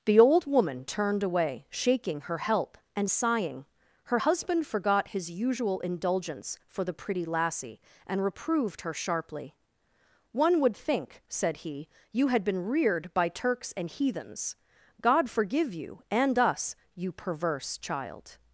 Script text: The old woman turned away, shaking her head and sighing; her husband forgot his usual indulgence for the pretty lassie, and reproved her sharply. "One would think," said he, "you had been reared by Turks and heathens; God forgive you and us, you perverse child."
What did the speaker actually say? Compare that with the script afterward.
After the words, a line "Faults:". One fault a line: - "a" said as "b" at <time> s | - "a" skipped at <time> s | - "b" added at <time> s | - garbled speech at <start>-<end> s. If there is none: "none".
The old woman turned away, shaking her help and sighing; her husband forgot his usual indulgence for the pretty lassie, and reproved her sharply. "One would think," said he, "you had been reared by Turks and heathens; God forgive you and us, you perverse child."
Faults:
- "head" said as "help" at 2.4 s